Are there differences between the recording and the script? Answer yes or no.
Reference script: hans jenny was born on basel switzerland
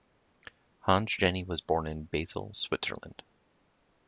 yes